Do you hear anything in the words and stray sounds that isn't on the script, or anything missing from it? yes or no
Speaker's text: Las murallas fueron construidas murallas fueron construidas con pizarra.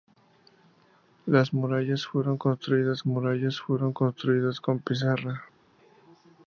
no